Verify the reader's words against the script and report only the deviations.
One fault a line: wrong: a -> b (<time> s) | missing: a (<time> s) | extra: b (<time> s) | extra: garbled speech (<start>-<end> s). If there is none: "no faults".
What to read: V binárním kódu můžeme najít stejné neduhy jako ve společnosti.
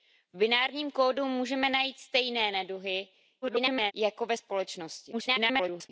extra: garbled speech (3.4-3.9 s)
extra: garbled speech (5.1-5.9 s)